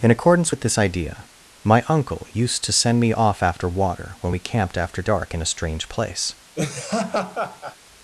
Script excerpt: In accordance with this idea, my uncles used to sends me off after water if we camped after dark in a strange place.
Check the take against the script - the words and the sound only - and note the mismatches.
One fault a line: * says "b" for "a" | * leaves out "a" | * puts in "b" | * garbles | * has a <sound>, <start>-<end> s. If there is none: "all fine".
* says "uncle" for "uncles"
* says "send" for "sends"
* says "when" for "if"
* has a laugh, 6.5-7.8 s